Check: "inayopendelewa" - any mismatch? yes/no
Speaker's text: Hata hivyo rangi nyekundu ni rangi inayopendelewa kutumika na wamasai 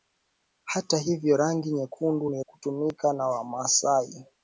yes